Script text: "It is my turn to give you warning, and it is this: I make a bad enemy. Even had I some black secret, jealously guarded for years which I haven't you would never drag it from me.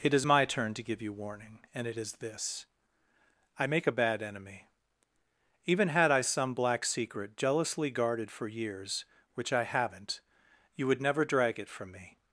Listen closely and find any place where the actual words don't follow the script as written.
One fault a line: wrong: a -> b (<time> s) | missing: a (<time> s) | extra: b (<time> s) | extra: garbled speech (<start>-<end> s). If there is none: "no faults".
no faults